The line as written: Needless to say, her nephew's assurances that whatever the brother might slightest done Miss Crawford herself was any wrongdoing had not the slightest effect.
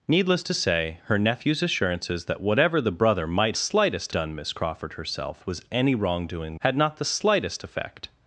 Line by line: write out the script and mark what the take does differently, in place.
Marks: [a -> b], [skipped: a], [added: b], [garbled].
Needless to say, her nephew's assurances that whatever the brother might slightest done Miss Crawford herself was any wrongdoing had not the slightest effect.